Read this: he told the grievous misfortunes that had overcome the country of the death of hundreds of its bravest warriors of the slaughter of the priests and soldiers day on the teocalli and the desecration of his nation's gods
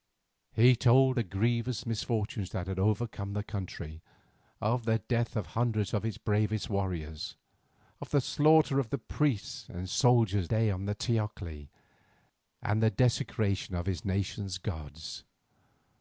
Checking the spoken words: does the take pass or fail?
pass